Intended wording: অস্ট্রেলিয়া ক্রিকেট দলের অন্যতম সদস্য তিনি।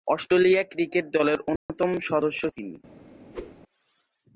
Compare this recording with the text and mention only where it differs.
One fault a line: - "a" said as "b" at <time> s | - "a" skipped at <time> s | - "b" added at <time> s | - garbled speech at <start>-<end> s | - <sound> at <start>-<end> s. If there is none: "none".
- dropout at 1.6-1.7 s
- whoosh at 3.3-3.6 s